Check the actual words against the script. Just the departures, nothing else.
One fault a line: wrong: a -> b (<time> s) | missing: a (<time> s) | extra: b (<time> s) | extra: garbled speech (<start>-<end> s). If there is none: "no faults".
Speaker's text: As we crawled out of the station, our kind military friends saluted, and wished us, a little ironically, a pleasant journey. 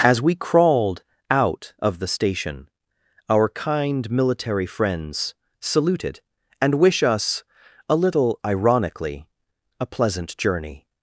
wrong: wished -> wish (6.7 s)